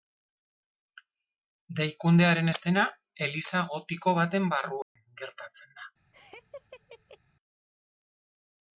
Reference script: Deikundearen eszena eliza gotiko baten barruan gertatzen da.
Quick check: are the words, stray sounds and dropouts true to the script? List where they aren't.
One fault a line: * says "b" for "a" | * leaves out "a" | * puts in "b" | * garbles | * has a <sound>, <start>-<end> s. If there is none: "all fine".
* has a dropout, 4.8-5.0 s
* has a laugh, 6.1-7.2 s